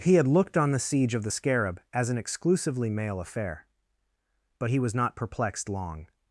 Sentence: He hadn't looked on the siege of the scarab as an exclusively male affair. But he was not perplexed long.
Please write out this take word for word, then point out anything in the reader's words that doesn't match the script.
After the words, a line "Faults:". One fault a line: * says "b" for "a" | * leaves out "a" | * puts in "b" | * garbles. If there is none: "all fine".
He had looked on the siege of the scarab as an exclusively male affair. But he was not perplexed long.
Faults:
* says "had" for "hadn't"